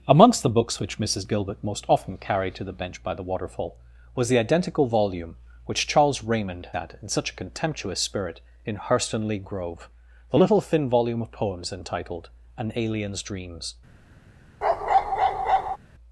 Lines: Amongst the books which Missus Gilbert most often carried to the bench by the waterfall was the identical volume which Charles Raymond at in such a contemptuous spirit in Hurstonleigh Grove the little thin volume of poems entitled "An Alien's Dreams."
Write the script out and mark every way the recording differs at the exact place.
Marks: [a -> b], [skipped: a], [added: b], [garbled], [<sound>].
Amongst the books which Missus Gilbert most often carried to the bench by the waterfall was the identical volume which Charles Raymond at in such a contemptuous spirit in Hurstonleigh Grove the little thin volume of poems entitled "An Alien's Dreams." [bark]